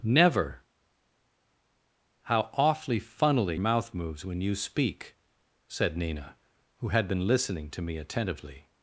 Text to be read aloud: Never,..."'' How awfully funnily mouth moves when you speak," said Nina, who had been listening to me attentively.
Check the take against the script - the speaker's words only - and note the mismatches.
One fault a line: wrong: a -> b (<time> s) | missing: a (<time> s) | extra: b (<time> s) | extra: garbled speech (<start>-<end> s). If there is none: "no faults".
no faults